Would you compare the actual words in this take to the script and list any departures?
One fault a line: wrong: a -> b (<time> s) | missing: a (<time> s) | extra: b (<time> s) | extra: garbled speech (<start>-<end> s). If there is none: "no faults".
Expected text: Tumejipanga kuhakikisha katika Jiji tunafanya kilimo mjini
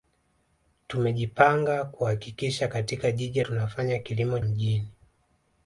no faults